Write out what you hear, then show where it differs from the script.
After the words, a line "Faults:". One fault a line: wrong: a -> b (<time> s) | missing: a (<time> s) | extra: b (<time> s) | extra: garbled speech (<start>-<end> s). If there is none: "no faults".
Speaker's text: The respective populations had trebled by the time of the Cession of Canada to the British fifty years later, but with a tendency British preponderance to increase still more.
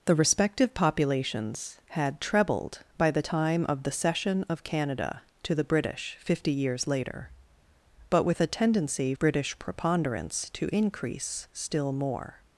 The respective populations had trebled by the time of the Cession of Canada to the British fifty years later, but with a tendency British preponderance to increase still more.
Faults:
no faults